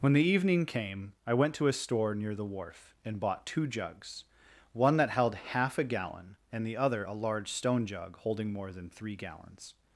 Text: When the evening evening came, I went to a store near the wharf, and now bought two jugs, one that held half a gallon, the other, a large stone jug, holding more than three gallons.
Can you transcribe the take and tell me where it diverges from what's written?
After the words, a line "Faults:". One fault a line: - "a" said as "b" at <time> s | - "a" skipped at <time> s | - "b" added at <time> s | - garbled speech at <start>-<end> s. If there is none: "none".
When the evening came, I went to a store near the wharf, and bought two jugs, one that held half a gallon, and the other, a large stone jug, holding more than three gallons.
Faults:
- "evening" skipped at 0.7 s
- "now" skipped at 3.2 s
- "and" added at 6.5 s